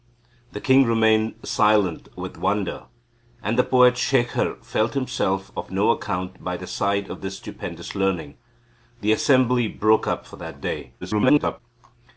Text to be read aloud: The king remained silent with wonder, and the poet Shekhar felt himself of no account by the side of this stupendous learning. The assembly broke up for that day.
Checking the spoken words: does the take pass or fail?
fail